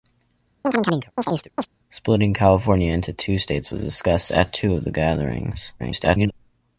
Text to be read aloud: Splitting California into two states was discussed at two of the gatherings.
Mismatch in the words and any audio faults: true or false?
true